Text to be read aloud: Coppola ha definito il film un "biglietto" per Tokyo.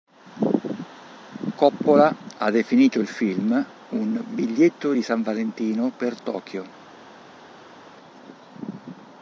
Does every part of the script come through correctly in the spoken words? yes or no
no